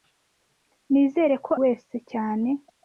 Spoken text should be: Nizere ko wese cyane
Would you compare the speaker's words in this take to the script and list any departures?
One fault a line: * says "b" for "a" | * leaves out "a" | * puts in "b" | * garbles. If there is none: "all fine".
all fine